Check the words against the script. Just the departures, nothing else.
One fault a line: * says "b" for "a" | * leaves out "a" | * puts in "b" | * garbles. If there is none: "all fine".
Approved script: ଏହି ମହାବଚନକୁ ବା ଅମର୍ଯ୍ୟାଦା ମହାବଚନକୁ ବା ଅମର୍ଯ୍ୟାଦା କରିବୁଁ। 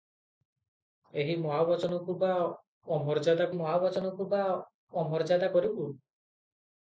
all fine